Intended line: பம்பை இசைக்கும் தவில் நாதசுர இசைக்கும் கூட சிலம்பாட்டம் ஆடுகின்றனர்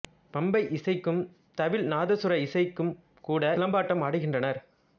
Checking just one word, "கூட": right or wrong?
right